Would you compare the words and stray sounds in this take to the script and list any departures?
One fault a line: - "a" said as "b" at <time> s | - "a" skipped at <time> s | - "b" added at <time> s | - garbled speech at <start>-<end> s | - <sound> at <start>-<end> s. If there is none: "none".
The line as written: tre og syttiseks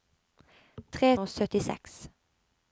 none